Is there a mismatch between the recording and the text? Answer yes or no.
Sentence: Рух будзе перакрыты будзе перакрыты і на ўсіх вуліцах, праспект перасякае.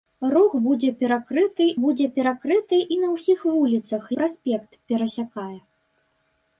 no